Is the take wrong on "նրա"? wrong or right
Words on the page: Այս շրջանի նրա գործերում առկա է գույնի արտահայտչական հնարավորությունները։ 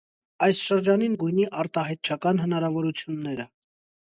wrong